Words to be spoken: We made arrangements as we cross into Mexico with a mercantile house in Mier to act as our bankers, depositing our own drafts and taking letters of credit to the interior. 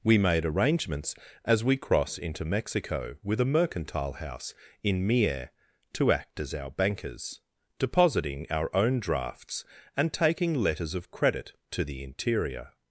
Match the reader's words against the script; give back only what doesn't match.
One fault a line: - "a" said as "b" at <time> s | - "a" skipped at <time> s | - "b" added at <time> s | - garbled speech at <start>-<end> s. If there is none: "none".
none